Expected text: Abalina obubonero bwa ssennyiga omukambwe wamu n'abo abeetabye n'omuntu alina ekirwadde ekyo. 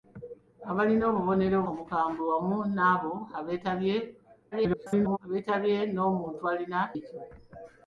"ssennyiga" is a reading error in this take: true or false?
true